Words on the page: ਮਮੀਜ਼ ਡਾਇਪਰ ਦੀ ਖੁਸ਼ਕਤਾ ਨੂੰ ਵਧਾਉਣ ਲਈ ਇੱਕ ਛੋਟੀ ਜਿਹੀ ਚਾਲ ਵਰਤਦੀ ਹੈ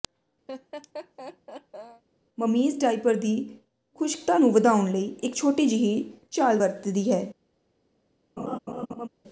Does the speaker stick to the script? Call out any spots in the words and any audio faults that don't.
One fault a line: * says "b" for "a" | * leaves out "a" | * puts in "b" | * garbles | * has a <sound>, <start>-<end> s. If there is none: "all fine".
* has a laugh, 0.5-2.0 s
* has a laugh, 8.4-9.1 s